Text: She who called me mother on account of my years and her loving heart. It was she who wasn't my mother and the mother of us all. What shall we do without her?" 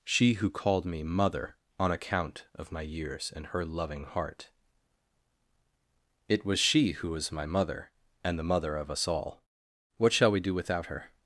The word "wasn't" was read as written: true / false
false